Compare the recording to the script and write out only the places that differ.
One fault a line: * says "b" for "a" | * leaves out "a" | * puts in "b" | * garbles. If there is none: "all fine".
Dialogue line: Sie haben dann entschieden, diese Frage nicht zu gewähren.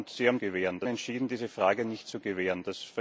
* says "gewähren" for "dann"